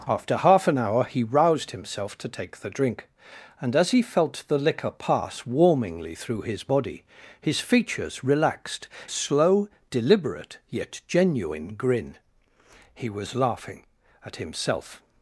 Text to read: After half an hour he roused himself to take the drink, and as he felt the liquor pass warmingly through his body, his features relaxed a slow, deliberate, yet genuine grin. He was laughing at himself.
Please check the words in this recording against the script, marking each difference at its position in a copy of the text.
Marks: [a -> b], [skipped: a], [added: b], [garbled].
After half an hour he roused himself to take the drink, and as he felt the liquor pass warmingly through his body, his features relaxed a slow, deliberate, yet genuine grin. He was laughing at himself.